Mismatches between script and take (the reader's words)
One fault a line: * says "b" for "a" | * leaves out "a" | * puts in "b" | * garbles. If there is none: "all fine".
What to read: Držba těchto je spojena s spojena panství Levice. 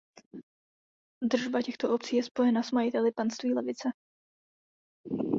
* puts in "obcí"
* says "majiteli" for "spojena"